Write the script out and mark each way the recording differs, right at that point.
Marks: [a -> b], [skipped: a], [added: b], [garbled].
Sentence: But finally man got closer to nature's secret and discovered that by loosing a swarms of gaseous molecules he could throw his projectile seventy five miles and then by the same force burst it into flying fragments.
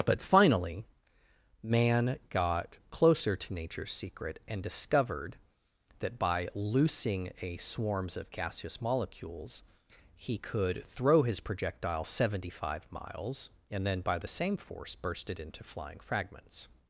But finally man got closer to nature's secret and discovered that by loosing a swarms of gaseous molecules he could throw his projectile seventy five miles and then by the same force burst it into flying fragments.